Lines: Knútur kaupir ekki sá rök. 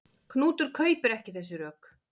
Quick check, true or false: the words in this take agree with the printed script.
false